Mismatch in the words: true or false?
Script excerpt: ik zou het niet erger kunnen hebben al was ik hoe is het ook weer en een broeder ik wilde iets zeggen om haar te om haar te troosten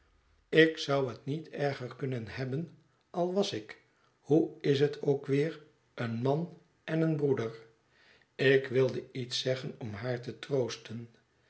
true